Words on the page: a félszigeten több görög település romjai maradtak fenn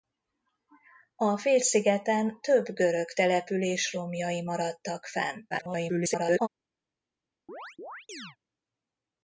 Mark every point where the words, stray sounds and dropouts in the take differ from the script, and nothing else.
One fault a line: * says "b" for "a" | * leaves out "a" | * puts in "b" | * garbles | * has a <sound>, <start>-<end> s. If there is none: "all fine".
* garbles
* has a chirp, 7.5-8.4 s